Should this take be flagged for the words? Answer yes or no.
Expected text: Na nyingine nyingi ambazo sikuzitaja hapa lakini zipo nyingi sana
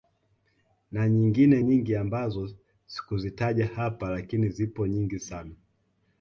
no